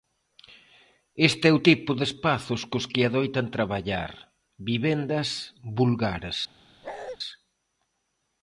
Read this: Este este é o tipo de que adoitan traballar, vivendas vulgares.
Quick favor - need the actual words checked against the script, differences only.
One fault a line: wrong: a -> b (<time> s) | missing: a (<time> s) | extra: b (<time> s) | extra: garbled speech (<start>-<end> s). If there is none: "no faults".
missing: este (1.4 s)
extra: espazos cos (2.1 s)